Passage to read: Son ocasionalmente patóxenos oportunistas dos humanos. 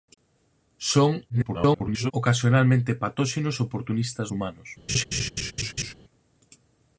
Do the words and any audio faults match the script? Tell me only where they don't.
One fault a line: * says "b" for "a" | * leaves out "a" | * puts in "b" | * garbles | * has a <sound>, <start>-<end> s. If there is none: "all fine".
* garbles
* leaves out "dos"
* has a laugh, 4.9-5.9 s